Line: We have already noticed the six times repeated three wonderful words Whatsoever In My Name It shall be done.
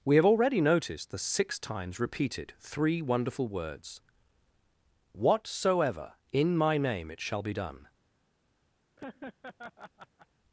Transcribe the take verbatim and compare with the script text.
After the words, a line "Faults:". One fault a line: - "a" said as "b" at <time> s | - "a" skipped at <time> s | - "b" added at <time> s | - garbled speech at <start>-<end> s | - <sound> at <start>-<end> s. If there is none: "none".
We have already noticed the six times repeated three wonderful words Whatsoever In My Name It shall be done.
Faults:
- laugh at 9.0-10.3 s